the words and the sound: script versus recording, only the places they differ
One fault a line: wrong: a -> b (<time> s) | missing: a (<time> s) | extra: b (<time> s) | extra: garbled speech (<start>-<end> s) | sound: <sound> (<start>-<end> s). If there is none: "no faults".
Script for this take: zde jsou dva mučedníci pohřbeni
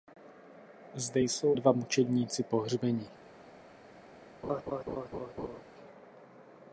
sound: laugh (4.4-5.6 s)